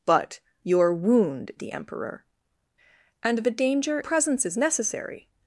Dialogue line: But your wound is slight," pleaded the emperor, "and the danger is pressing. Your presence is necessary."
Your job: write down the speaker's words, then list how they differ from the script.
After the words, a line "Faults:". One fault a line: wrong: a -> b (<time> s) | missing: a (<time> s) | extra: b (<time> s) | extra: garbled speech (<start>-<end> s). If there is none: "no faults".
But your wound the emperor, "and the danger presence is necessary."
Faults:
missing: is slight pleaded (1.5 s)
missing: is pressing Your (4.0 s)